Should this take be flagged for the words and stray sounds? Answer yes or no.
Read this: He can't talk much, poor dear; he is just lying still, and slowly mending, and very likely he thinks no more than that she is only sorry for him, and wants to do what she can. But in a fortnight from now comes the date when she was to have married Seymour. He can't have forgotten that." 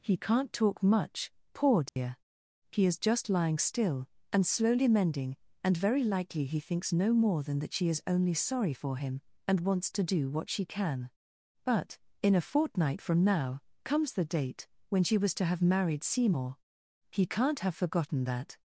yes